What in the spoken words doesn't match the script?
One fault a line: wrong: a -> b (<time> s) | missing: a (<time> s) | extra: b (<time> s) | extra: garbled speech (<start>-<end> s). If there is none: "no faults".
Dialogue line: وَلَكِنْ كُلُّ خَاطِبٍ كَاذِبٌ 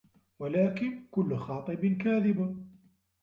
no faults